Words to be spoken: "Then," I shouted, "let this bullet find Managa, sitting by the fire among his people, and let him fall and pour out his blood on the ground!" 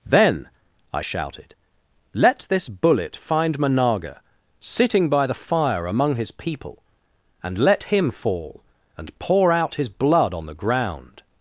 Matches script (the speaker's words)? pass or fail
pass